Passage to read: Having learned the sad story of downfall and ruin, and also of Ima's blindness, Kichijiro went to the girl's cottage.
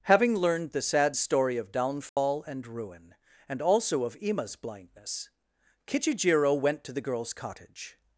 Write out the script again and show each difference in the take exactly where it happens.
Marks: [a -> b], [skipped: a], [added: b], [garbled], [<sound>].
Having learned the sad story of downfall [dropout] and ruin, and also of Ima's blindness, Kichijiro went to the girl's cottage.